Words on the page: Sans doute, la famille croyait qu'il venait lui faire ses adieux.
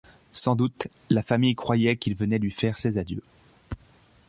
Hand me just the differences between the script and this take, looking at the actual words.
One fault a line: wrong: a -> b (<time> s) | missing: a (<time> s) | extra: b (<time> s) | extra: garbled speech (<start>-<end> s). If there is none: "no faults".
no faults